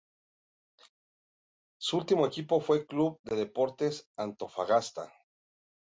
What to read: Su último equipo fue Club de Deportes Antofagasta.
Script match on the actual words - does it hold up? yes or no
yes